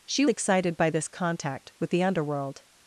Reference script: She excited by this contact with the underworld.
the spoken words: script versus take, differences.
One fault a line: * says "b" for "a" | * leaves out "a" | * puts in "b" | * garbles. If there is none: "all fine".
all fine